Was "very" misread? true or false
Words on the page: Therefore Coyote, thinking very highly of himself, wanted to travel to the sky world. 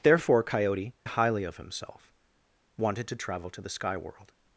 true